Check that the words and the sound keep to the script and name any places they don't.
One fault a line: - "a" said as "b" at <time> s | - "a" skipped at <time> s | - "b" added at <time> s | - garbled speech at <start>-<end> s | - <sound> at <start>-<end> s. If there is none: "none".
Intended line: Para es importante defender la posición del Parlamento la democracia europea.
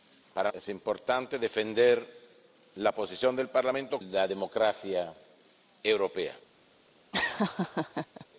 - laugh at 7.1-8.3 s